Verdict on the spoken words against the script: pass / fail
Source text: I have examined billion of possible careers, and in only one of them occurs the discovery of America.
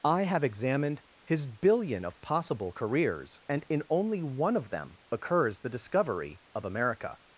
fail